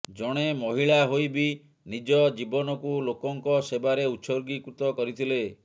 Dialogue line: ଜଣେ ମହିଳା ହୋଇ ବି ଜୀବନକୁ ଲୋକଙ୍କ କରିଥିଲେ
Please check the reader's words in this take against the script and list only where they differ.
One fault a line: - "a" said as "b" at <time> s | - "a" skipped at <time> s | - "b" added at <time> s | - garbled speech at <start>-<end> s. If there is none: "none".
- "ନିଜ" added at 1.9 s
- "ସେବାରେ ଉତ୍ସର୍ଗୀକୃତ" added at 3.7 s